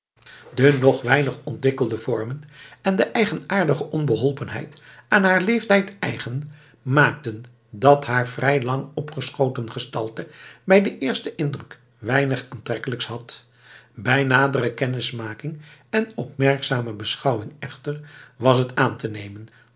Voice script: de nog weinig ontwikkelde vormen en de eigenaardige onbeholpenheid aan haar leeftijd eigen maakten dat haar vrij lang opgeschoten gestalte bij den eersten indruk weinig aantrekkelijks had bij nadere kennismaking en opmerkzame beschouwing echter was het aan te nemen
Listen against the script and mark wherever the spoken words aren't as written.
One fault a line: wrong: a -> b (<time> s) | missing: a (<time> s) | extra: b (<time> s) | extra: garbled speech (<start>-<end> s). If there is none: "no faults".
no faults